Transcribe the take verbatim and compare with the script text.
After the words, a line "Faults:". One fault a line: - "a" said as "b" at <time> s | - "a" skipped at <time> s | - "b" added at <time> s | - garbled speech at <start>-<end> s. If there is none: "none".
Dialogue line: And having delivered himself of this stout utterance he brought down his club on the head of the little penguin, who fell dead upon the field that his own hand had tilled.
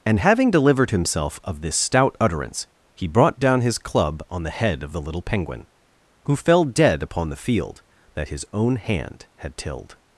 And having delivered himself of this stout utterance he brought down his club on the head of the little penguin, who fell dead upon the field that his own hand had tilled.
Faults:
none